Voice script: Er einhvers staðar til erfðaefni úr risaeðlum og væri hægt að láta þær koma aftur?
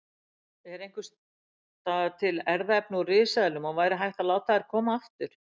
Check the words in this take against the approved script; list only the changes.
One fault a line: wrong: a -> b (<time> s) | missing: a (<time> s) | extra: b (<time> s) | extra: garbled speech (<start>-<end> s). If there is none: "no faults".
no faults